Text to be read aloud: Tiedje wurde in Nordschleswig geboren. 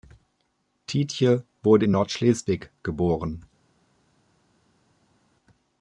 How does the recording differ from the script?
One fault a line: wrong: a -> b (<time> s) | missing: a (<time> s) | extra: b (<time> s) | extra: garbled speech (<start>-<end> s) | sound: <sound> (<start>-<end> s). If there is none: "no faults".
no faults